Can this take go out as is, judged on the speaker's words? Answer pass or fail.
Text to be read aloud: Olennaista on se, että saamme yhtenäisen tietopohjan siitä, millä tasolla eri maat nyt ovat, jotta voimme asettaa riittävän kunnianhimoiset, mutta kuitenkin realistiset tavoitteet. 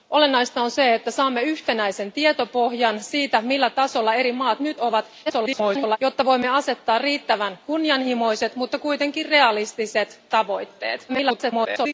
fail